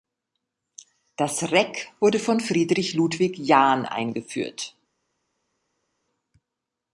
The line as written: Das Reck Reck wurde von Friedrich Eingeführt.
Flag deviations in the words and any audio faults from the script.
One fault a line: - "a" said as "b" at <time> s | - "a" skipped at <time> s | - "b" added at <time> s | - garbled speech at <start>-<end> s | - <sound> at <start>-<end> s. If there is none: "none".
- "Reck" skipped at 1.9 s
- "Ludwig Jahn" added at 2.9 s